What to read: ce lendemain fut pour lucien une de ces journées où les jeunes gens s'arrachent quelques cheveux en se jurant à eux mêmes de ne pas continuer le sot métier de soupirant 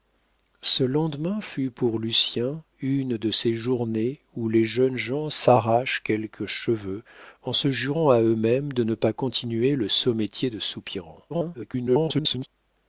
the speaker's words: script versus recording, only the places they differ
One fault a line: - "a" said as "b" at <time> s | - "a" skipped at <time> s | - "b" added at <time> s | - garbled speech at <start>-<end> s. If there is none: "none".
- garbled speech at 11.3-12.5 s